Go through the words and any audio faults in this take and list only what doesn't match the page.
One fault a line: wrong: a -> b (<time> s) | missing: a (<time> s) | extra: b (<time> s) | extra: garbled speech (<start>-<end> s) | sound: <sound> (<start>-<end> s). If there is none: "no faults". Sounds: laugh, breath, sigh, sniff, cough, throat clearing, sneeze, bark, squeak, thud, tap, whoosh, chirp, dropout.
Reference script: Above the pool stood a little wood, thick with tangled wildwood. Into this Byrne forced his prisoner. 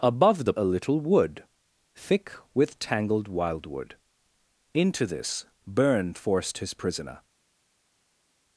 missing: pool stood (0.5 s)